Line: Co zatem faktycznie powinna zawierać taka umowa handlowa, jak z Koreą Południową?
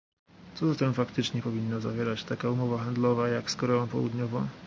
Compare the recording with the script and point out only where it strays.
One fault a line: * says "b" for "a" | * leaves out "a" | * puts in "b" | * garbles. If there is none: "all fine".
all fine